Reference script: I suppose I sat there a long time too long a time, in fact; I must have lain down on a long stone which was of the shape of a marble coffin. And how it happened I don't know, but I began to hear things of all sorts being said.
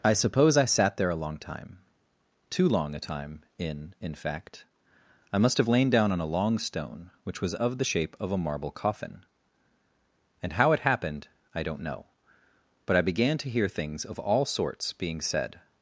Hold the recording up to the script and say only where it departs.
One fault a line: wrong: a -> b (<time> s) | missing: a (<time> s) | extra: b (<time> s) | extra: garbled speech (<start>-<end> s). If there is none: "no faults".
extra: in (4.0 s)